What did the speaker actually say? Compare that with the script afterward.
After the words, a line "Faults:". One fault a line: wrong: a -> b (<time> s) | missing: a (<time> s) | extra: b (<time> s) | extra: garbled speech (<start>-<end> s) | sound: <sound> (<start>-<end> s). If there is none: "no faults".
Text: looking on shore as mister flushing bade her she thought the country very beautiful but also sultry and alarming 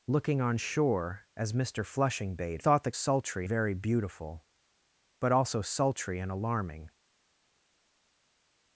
looking on shore as mister flushing bade thought the sultry very beautiful but also sultry and alarming
Faults:
missing: her she (2.6 s)
wrong: country -> sultry (2.9 s)